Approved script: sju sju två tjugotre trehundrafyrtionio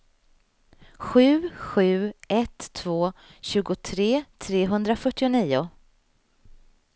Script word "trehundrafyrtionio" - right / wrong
right